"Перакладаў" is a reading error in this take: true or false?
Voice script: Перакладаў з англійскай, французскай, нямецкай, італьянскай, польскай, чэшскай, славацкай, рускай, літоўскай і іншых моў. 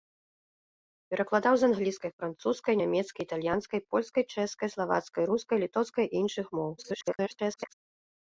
false